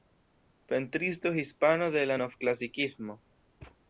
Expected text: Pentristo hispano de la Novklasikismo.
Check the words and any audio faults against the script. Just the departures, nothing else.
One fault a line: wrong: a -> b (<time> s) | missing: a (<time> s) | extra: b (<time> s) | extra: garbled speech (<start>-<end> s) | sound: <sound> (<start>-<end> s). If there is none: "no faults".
sound: thud (3.6-3.8 s)